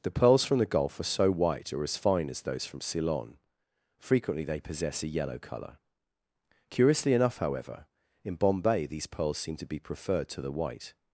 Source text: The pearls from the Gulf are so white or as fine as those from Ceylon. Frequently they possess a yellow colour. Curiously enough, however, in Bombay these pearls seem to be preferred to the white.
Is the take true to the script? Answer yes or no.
yes